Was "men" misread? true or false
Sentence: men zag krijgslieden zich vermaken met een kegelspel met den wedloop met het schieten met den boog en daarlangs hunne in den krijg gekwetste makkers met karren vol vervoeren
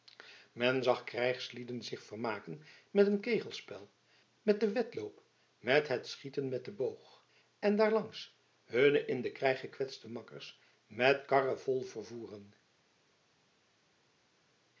false